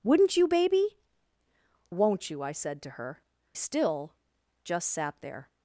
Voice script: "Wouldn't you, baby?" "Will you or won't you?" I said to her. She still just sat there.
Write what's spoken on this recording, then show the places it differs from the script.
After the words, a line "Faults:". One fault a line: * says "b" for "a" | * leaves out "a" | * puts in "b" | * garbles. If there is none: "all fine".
"Wouldn't you, baby?" "Won't you?" I said to her. Still just sat there.
Faults:
* leaves out "Will you or"
* leaves out "She"